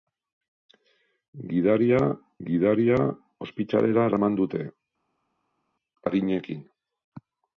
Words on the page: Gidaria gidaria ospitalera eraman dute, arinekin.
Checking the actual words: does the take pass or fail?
pass